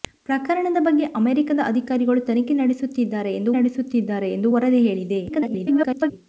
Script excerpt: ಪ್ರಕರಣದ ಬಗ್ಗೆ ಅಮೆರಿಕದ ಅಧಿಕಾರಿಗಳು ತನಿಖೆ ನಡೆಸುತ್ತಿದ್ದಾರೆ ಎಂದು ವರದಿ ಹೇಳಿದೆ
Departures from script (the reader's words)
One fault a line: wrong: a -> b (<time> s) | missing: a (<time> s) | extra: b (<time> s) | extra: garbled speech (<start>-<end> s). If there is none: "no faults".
extra: ನಡೆಸುತ್ತಿದ್ದಾರೆ ಎಂದು (3.6 s)
extra: garbled speech (5.3-6.1 s)